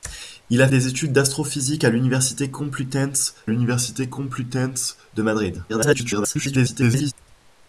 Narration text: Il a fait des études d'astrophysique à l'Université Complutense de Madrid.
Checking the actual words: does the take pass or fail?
fail